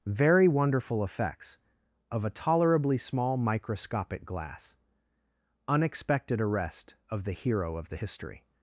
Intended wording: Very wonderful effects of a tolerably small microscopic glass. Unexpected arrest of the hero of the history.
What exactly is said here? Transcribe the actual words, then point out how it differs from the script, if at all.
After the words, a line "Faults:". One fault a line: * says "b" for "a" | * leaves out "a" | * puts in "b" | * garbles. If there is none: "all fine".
Very wonderful effects of a tolerably small microscopic glass. Unexpected arrest of the hero of the history.
Faults:
all fine